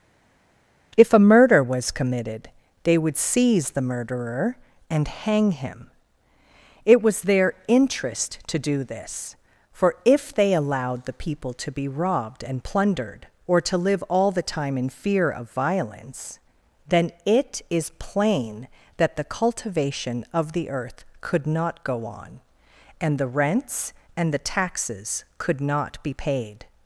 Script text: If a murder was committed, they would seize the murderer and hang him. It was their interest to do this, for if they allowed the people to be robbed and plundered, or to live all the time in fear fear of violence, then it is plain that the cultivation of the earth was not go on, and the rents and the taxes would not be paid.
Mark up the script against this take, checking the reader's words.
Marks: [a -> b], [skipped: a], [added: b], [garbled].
If a murder was committed, they would seize the murderer and hang him. It was their interest to do this, for if they allowed the people to be robbed and plundered, or to live all the time in fear [skipped: fear] of violence, then it is plain that the cultivation of the earth [was -> could] not go on, and the rents and the taxes [would -> could] not be paid.